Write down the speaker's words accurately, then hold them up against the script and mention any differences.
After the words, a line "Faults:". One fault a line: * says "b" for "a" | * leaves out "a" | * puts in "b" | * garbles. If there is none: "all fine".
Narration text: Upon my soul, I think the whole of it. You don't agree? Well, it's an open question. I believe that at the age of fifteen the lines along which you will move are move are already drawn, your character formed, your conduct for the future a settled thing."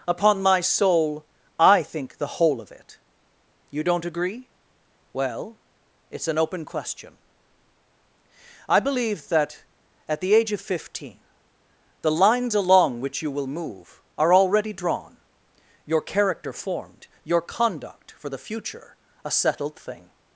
Upon my soul, I think the whole of it. You don't agree? Well, it's an open question. I believe that at the age of fifteen the lines along which you will move are already drawn, your character formed, your conduct for the future a settled thing."
Faults:
* leaves out "move are"